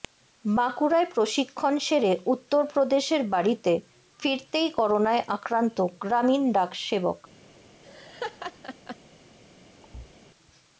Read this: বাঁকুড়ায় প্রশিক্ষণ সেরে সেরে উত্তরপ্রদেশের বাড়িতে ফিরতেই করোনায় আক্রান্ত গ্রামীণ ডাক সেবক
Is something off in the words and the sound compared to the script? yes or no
yes